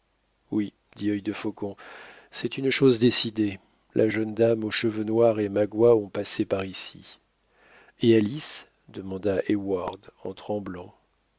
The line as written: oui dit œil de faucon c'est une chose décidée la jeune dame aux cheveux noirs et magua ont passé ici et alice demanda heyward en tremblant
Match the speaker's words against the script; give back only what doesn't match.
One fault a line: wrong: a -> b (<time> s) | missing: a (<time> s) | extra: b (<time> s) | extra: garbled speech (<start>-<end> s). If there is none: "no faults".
extra: par (6.4 s)